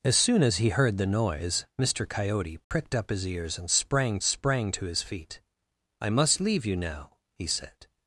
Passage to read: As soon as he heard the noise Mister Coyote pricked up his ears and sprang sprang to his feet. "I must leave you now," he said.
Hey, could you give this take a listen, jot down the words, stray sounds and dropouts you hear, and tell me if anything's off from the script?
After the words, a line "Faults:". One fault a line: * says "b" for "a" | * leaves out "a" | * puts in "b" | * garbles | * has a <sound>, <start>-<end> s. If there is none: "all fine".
As soon as he heard the noise Mister Coyote pricked up his ears and sprang sprang to his feet. "I must leave you now," he said.
Faults:
* has a dropout, 2.6-2.7 s